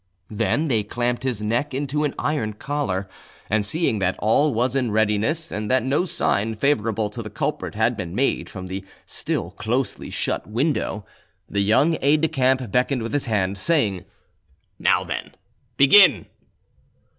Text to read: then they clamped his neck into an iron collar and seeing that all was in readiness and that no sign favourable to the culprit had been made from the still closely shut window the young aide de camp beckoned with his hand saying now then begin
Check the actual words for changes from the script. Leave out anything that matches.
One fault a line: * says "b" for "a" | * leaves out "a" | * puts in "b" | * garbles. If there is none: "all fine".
all fine